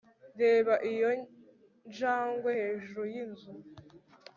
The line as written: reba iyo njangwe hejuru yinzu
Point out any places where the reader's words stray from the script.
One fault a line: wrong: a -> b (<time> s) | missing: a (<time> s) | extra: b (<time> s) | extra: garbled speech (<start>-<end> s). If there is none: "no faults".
no faults